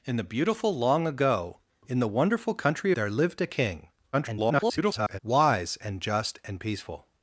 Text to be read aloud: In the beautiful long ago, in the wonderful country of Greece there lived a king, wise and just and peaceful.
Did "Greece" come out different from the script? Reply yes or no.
yes